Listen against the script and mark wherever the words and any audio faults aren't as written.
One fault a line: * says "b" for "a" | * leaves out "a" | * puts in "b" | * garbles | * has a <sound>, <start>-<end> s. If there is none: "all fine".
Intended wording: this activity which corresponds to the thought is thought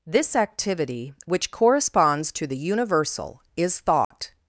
* says "universal" for "thought"
* has a dropout, 4.0-4.1 s